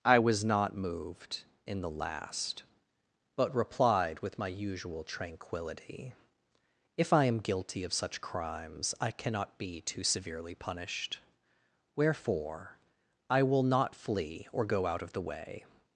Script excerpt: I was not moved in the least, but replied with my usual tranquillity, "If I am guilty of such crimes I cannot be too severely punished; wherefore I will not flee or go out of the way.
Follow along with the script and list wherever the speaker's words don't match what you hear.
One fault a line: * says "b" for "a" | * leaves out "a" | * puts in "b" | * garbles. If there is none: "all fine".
* says "last" for "least"